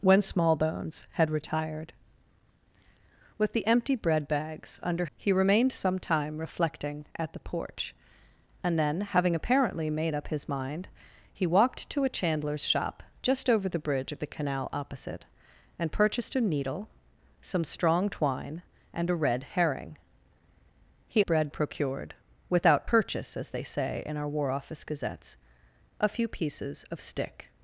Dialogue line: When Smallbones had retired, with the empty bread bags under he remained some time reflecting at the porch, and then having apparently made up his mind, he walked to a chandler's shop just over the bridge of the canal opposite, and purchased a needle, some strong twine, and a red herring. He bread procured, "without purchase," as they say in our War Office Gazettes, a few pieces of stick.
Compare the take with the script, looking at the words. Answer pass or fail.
pass